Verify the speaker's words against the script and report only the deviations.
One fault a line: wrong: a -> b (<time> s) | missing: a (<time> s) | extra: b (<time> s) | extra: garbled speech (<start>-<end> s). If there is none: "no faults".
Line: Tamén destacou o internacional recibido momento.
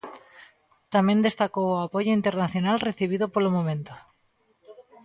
extra: apoio (1.8 s)
extra: polo (3.3 s)